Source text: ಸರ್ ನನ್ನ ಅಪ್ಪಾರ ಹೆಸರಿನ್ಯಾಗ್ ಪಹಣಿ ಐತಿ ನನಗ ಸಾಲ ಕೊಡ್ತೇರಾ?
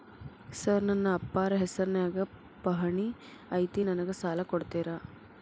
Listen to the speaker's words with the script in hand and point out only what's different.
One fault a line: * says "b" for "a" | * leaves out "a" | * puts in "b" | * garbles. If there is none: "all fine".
all fine